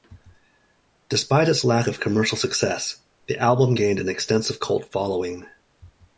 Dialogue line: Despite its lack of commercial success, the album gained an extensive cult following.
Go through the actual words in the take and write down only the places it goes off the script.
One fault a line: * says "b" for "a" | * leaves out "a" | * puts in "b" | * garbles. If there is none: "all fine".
all fine